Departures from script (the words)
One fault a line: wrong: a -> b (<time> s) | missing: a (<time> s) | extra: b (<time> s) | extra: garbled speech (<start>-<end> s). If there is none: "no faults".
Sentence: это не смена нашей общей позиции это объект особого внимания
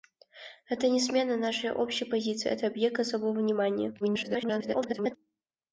extra: garbled speech (4.0-5.2 s)